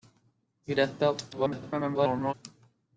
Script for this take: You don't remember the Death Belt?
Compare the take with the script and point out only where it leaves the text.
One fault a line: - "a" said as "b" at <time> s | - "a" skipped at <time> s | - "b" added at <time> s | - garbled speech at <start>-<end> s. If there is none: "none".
- "don't remember the" skipped at 0.7 s
- garbled speech at 1.3-2.3 s